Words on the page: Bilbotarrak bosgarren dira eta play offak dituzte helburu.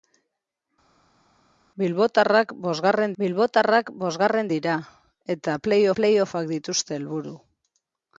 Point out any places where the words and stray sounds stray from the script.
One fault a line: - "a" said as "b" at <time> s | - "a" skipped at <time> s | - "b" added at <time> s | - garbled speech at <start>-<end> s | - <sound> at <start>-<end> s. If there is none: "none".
- "bilbotarrak bosgarren" added at 3.2 s
- "play" added at 6.0 s